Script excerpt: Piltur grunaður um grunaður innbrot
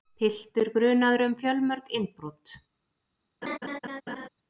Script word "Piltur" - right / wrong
right